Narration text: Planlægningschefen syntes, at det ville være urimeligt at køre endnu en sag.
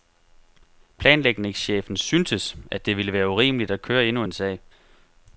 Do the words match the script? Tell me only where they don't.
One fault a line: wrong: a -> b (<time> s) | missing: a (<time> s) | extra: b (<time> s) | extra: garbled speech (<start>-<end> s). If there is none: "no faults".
no faults